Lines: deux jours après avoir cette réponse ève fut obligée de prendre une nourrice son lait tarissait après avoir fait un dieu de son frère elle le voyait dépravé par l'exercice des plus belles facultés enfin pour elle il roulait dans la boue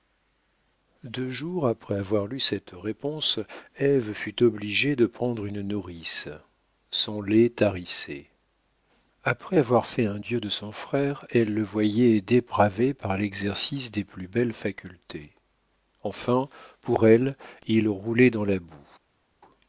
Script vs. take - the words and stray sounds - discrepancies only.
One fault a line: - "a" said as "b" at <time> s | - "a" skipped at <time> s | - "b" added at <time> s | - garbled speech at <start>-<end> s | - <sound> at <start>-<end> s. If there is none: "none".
- "lu" added at 2.2 s